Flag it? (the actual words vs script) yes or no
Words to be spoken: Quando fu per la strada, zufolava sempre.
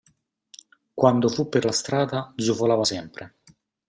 no